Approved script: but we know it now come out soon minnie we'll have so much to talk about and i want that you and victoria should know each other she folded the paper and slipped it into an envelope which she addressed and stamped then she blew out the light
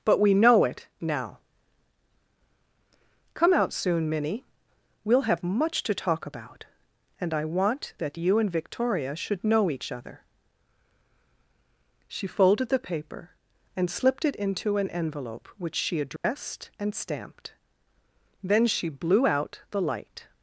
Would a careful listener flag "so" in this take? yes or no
yes